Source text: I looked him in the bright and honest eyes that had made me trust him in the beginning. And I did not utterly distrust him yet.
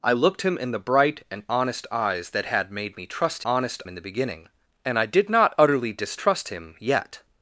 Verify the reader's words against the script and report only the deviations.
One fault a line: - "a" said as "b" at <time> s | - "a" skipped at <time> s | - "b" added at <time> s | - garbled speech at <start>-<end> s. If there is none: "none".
- "him" said as "honest" at 3.4 s